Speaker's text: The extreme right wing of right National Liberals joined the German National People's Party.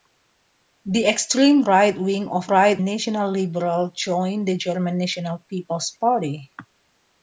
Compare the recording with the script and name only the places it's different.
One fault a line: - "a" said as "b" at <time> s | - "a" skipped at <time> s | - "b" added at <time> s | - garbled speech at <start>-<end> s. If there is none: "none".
none